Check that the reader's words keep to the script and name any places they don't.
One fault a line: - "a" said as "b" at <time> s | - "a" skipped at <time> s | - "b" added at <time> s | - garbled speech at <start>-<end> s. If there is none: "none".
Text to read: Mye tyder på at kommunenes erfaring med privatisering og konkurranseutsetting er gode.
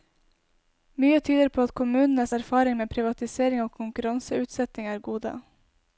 none